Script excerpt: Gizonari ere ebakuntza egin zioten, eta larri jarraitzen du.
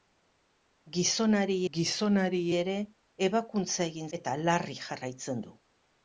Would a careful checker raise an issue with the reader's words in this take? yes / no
yes